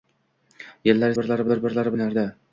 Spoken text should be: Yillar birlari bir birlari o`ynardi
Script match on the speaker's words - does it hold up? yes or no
yes